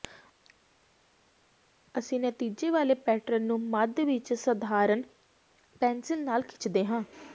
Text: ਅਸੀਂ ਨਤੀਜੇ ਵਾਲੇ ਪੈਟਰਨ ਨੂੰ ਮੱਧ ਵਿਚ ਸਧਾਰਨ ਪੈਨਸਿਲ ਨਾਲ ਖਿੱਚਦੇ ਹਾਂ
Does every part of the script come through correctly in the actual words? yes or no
yes